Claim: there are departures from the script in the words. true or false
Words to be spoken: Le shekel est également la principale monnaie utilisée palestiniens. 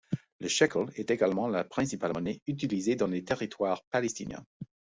true